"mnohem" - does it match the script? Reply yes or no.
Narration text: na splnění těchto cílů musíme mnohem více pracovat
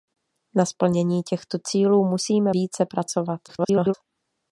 no